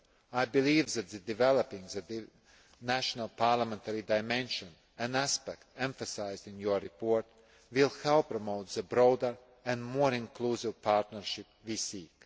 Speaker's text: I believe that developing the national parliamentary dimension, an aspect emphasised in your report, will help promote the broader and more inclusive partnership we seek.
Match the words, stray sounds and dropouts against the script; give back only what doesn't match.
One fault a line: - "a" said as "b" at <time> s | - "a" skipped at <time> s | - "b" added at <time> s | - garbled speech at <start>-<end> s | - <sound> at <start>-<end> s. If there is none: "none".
none